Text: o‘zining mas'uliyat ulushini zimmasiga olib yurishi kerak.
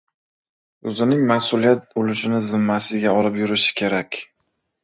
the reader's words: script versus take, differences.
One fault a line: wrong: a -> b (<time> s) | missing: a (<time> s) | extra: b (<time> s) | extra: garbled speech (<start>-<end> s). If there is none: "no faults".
no faults